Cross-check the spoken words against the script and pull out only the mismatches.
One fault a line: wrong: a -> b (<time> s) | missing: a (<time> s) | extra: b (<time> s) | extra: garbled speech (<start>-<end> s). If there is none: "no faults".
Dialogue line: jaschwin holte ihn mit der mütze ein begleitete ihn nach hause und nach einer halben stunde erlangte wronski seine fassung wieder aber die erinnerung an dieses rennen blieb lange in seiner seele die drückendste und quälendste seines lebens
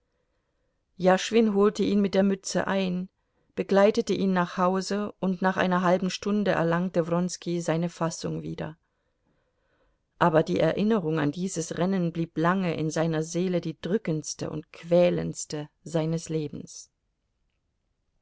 no faults